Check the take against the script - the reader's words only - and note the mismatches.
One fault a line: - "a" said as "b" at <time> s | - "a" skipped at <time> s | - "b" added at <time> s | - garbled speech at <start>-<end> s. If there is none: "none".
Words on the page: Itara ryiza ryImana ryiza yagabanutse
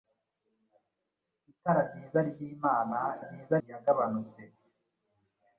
none